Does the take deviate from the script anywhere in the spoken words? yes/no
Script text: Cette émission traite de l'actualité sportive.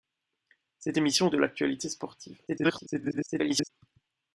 yes